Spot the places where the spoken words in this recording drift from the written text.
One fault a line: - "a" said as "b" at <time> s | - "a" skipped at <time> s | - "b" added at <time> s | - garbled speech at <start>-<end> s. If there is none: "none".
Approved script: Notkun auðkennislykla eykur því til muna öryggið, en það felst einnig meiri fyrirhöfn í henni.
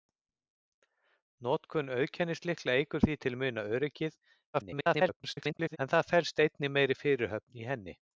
- garbled speech at 4.5-5.8 s